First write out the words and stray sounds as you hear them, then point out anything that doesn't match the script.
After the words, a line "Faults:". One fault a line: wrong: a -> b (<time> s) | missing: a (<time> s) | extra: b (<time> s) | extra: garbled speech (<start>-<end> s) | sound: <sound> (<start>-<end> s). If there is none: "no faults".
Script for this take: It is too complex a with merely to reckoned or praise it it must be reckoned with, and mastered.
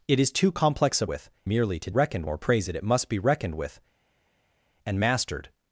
It is too complex a with merely to reckoned or praise it it must be reckoned with, and mastered.
Faults:
no faults